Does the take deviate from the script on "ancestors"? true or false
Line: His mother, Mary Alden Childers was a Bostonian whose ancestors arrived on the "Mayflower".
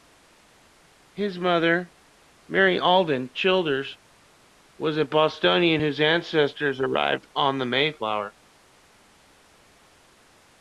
false